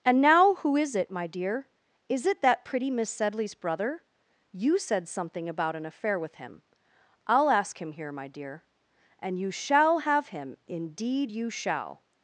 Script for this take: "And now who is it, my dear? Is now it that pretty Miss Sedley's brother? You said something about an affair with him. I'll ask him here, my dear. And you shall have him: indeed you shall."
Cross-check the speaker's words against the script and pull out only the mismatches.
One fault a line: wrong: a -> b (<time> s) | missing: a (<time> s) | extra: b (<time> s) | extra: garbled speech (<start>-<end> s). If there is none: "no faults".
missing: now (2.2 s)